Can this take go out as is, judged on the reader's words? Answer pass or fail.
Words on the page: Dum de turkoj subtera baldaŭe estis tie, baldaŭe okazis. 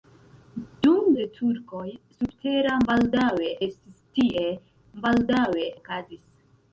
pass